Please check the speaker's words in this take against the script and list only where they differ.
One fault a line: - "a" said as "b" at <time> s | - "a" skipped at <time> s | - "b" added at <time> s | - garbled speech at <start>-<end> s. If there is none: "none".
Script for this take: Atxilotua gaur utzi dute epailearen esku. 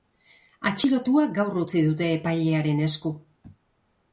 none